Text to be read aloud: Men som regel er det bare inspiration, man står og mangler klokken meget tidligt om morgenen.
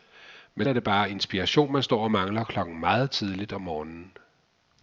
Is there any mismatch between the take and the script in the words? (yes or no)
yes